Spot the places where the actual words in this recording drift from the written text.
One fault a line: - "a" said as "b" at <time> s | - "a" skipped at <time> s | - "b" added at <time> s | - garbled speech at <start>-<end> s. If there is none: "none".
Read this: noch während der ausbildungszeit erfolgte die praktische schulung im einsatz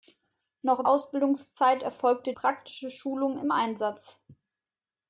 - "während der" skipped at 0.9 s
- "die" skipped at 2.3 s